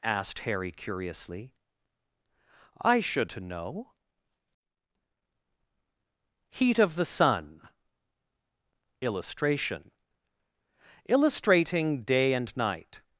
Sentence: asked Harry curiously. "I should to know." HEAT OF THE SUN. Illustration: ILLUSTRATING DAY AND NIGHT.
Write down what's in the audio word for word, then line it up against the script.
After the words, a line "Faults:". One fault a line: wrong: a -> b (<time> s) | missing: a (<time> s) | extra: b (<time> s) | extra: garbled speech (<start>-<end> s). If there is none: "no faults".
asked Harry curiously. "I should to know." HEAT OF THE SUN. Illustration: ILLUSTRATING DAY AND NIGHT.
Faults:
no faults